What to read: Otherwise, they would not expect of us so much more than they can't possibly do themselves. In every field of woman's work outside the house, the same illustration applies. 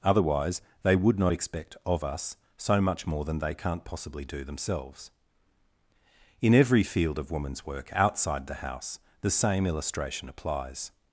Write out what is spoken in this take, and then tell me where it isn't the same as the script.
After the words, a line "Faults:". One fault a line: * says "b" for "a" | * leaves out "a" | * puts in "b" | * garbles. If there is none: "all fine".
Otherwise, they would not expect of us so much more than they can't possibly do themselves. In every field of woman's work outside the house, the same illustration applies.
Faults:
all fine